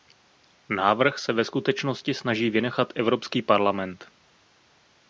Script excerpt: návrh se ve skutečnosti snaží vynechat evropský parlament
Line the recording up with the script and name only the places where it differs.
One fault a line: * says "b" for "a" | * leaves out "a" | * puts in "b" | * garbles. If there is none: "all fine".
all fine